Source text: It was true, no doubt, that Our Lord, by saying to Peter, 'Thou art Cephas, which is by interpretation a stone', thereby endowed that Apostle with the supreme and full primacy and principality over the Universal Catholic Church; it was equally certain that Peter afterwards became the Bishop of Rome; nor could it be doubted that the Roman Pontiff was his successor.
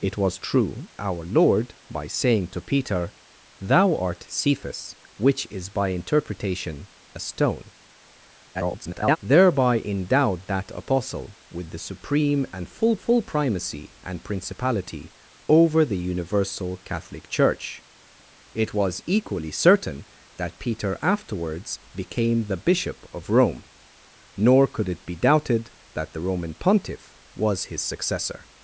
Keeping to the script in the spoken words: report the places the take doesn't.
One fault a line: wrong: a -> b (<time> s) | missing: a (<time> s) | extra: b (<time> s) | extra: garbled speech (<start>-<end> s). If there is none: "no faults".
missing: no doubt that (0.9 s)
extra: garbled speech (8.5-9.2 s)
extra: full (12.9 s)